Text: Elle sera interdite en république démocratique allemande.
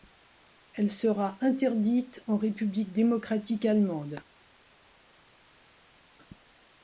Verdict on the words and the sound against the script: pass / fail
pass